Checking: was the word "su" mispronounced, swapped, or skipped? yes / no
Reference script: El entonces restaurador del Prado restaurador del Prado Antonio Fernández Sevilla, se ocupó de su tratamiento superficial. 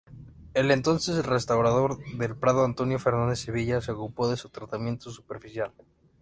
no